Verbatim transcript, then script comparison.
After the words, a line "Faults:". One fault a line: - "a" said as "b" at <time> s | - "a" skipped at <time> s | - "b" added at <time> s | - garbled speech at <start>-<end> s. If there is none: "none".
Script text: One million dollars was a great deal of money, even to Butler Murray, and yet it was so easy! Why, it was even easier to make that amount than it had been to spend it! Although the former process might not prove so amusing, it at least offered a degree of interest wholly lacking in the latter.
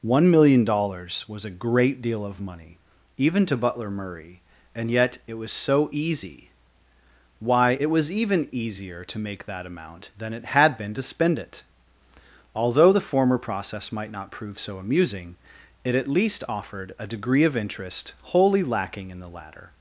One million dollars was a great deal of money, even to Butler Murray, and yet it was so easy! Why, it was even easier to make that amount than it had been to spend it! Although the former process might not prove so amusing, it at least offered a degree of interest wholly lacking in the latter.
Faults:
none